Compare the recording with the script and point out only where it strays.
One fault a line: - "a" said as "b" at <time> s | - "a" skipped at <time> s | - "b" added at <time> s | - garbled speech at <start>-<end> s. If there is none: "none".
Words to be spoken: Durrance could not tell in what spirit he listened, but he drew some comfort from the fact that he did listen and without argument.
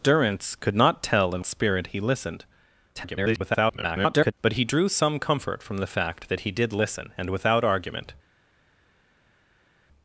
- "what" skipped at 1.4 s
- garbled speech at 3.0-4.3 s